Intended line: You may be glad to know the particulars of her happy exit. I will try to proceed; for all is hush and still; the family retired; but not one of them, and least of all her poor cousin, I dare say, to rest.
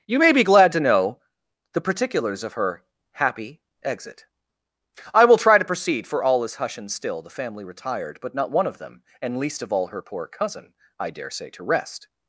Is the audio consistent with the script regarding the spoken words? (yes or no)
yes